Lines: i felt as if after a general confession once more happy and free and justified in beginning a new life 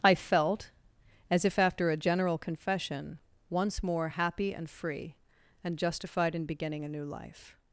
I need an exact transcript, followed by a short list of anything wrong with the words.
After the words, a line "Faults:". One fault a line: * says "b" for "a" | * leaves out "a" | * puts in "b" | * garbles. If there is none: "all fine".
i felt as if after a general confession once more happy and free and justified in beginning a new life
Faults:
all fine